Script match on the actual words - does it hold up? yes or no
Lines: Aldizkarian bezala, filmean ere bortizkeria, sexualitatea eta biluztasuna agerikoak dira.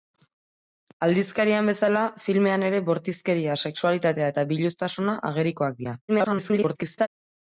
no